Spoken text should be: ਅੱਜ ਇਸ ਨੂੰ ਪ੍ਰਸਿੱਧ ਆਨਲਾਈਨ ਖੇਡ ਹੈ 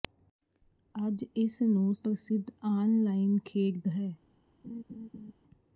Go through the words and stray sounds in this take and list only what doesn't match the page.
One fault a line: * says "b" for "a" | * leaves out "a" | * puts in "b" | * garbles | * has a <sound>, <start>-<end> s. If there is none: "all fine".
* has a laugh, 4.6-5.3 s